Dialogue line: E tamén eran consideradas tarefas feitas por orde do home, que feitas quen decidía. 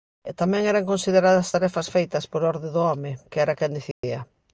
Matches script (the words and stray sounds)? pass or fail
fail